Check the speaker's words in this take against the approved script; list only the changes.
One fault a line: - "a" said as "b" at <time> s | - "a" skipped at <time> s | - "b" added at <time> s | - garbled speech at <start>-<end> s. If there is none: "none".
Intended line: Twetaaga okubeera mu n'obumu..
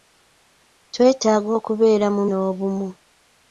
none